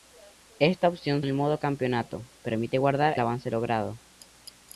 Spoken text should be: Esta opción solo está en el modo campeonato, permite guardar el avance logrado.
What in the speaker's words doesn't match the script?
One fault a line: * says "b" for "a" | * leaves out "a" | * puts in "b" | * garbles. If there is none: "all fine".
* leaves out "solo está"
* leaves out "el"